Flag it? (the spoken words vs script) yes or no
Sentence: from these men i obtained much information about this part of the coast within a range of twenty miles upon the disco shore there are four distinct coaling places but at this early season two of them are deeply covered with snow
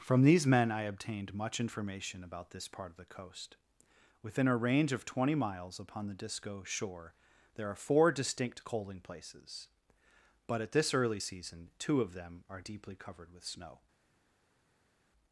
no